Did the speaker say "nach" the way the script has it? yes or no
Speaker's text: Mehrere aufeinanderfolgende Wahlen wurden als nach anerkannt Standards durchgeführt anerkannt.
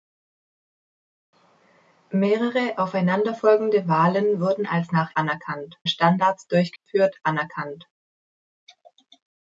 yes